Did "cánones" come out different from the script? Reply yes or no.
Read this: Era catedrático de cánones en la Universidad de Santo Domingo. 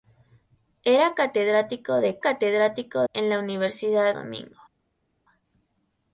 yes